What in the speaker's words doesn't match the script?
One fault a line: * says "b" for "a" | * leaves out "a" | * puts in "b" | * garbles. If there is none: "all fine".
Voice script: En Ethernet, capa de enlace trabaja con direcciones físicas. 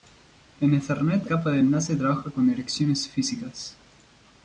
all fine